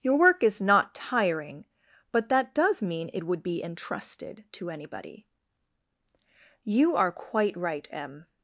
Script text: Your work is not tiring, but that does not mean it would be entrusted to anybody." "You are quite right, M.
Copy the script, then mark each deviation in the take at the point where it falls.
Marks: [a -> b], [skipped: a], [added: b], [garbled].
Your work is not tiring, but that does [skipped: not] mean it would be entrusted to anybody." "You are quite right, M.